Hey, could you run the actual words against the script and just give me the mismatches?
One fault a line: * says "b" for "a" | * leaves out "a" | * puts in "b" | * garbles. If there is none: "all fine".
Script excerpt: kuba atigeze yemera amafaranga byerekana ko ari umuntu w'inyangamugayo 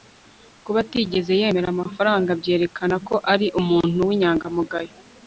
all fine